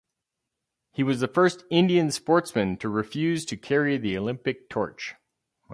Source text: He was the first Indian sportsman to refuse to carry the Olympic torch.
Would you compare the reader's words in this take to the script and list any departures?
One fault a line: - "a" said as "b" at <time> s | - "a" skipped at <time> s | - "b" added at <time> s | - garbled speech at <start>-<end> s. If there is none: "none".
none